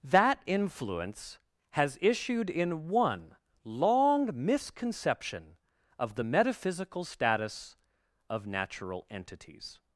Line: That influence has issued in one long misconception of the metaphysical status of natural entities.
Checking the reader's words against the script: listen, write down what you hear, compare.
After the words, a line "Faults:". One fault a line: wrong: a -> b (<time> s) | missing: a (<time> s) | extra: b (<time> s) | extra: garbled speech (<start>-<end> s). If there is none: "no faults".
That influence has issued in one long misconception of the metaphysical status of natural entities.
Faults:
no faults